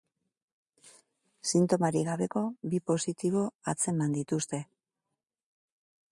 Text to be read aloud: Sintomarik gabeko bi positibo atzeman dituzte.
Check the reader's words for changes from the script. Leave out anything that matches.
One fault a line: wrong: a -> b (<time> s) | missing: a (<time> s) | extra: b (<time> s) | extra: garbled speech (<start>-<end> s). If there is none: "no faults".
no faults